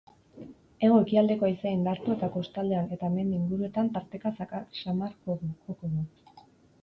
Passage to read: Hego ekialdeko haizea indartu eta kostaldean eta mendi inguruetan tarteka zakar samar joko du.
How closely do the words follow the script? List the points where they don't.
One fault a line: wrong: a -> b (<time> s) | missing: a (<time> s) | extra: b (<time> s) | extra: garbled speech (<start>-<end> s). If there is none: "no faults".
no faults